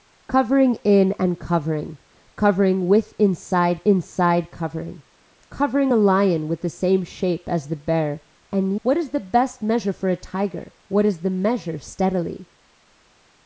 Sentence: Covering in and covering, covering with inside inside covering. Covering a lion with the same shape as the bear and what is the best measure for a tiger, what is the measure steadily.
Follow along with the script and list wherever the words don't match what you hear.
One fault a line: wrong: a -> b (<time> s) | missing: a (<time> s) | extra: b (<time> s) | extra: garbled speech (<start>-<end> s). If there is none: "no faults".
no faults